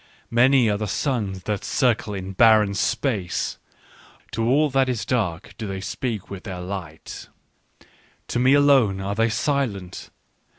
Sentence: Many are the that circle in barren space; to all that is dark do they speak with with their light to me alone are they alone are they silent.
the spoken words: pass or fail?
fail